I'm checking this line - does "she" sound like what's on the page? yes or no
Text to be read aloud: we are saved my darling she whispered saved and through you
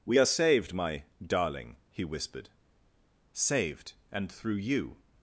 no